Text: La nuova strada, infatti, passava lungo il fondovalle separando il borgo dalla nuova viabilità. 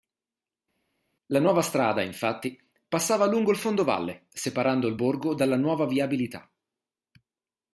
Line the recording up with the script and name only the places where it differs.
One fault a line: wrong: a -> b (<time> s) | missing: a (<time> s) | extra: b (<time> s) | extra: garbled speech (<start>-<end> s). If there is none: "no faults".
no faults